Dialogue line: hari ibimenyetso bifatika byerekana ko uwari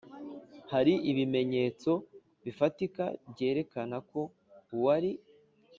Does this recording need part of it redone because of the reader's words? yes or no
no